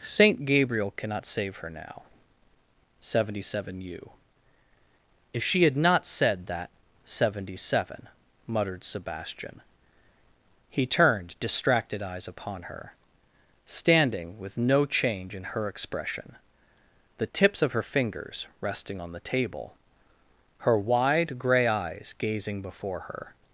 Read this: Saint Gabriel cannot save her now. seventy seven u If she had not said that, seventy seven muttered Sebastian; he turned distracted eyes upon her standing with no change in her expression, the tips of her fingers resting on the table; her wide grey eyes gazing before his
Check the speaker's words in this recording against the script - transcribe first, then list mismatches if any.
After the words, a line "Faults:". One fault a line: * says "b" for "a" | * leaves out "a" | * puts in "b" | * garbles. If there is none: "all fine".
Saint Gabriel cannot save her now. seventy seven u If she had not said that, seventy seven muttered Sebastian; he turned distracted eyes upon her standing with no change in her expression, the tips of her fingers resting on the table; her wide grey eyes gazing before her
Faults:
* says "her" for "his"